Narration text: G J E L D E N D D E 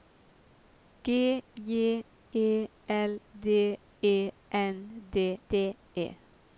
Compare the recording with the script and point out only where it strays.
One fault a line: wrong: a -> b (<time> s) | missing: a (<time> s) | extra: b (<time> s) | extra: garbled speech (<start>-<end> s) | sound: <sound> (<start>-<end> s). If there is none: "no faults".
no faults